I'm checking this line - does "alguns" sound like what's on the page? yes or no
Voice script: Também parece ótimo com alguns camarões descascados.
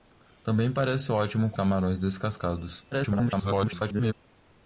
no